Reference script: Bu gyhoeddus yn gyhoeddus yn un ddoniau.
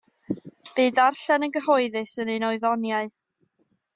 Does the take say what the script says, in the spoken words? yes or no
no